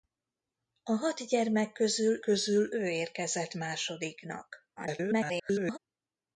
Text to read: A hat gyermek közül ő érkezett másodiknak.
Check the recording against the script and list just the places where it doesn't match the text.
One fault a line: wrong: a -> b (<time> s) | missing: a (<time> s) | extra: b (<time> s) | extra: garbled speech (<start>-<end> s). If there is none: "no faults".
extra: közül (2.2 s)
extra: garbled speech (4.8-5.8 s)